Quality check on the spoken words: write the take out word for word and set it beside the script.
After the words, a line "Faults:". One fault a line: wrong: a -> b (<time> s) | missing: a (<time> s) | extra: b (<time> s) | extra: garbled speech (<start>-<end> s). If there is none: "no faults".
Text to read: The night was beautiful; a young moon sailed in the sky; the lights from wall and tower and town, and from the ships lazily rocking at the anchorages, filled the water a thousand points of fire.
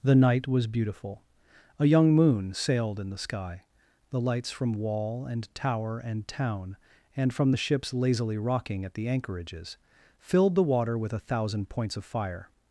The night was beautiful; a young moon sailed in the sky; the lights from wall and tower and town, and from the ships lazily rocking at the anchorages, filled the water with a thousand points of fire.
Faults:
extra: with (11.0 s)